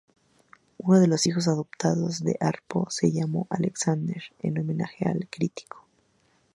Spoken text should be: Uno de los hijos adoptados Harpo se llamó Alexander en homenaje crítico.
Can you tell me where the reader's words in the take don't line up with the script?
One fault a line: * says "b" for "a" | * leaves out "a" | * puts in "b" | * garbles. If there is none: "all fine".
* puts in "de"
* puts in "al"